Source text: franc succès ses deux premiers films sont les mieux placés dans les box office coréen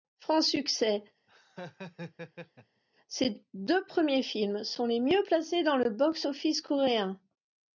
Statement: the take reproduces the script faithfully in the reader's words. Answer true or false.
false